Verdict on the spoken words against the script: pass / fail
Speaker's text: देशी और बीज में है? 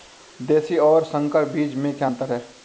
fail